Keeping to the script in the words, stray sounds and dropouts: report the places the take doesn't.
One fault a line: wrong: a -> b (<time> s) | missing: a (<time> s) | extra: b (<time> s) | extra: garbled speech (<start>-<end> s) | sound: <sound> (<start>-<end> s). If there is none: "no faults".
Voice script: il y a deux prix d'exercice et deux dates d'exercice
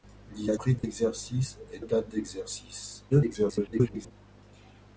missing: deux (0.5 s)
sound: dropout (0.8-0.8 s)
missing: deux (1.8 s)
extra: garbled speech (3.1-4.1 s)